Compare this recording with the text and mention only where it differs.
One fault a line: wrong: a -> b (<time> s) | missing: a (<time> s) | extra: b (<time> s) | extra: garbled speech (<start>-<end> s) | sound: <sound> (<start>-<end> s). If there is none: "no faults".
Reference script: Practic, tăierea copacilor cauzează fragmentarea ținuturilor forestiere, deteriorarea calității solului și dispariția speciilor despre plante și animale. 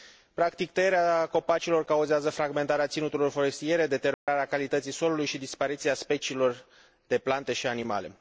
sound: dropout (4.1-4.3 s)
wrong: despre -> de (7.1 s)